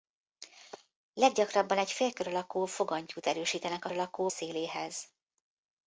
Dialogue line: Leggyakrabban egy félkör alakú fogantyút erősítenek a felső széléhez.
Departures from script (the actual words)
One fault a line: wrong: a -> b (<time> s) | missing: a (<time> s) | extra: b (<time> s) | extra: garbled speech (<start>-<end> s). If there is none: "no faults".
wrong: felső -> alakú (3.9 s)